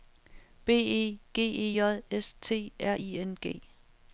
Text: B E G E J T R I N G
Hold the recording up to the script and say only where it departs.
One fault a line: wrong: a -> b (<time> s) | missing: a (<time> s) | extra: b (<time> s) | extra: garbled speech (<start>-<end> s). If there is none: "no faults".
extra: S (2.1 s)